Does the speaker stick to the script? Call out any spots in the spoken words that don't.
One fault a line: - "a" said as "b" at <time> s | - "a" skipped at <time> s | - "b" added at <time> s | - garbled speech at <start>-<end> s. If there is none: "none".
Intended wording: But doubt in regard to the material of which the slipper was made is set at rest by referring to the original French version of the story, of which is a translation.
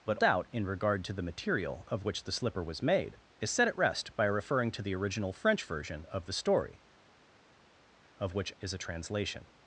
none